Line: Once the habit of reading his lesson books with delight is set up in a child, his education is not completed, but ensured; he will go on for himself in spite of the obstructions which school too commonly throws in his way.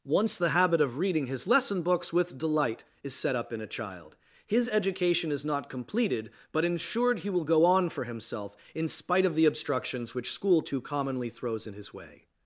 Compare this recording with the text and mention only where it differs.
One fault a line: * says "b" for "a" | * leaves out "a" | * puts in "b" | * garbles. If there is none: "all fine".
all fine